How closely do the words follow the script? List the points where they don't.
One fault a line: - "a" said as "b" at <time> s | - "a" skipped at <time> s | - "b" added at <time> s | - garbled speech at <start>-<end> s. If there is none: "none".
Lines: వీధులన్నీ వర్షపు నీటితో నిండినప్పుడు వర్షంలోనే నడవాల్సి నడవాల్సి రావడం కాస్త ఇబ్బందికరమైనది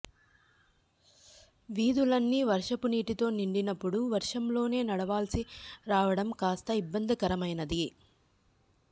- "నడవాల్సి" skipped at 5.4 s